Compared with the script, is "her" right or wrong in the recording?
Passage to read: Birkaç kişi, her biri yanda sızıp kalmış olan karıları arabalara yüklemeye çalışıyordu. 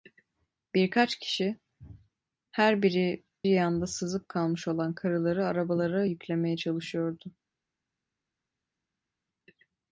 right